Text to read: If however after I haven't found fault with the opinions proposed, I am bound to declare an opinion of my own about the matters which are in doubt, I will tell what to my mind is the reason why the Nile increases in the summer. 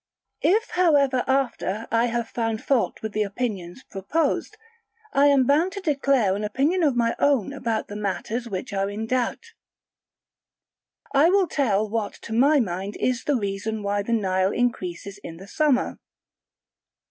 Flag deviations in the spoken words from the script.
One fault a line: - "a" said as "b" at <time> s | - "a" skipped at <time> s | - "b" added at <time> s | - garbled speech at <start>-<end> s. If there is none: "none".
- "haven't" said as "have" at 2.1 s